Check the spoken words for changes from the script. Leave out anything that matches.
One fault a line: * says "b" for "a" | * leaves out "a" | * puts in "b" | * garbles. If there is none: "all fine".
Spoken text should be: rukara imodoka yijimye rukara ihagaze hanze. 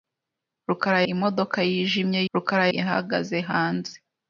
all fine